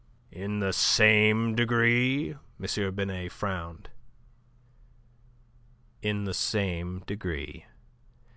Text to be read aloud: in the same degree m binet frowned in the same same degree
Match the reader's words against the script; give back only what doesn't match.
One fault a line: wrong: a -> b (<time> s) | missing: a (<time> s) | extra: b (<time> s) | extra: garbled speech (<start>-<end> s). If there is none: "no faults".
missing: same (7.0 s)